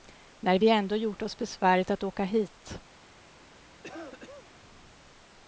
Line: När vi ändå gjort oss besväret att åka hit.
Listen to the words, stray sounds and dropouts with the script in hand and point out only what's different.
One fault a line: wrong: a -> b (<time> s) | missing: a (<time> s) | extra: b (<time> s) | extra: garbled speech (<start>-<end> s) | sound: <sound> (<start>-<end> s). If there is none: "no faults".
sound: cough (3.8-4.5 s)